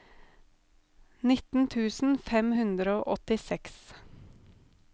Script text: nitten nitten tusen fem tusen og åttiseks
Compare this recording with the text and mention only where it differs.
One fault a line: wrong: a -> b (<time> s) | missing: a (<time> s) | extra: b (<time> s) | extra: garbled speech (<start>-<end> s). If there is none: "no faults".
missing: nitten (1.7 s)
wrong: tusen -> hundre (2.6 s)